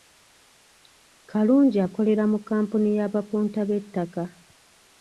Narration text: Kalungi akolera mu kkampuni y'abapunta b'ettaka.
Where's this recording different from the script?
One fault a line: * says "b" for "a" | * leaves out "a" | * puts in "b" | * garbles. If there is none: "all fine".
all fine